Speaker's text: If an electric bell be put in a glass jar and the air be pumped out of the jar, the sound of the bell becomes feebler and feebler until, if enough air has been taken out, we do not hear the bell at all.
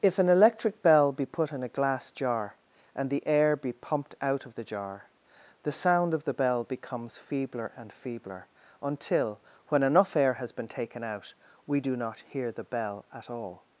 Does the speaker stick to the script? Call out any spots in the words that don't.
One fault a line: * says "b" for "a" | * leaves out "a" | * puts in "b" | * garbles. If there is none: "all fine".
* says "when" for "if"